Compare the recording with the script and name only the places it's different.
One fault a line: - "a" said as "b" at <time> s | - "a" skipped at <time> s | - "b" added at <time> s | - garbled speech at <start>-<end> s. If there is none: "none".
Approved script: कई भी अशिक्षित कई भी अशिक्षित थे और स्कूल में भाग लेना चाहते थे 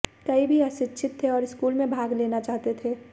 - "कई भी अशिक्षित" skipped at 1.2 s